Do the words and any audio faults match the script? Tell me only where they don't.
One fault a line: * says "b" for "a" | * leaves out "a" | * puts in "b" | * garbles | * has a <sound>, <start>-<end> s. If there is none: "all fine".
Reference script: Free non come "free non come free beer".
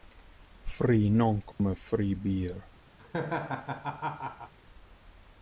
* has a dropout, 1.5-1.6 s
* leaves out "non come free"
* has a laugh, 3.0-4.5 s